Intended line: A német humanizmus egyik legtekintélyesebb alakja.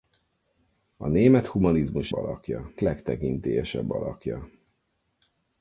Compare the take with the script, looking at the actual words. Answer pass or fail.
fail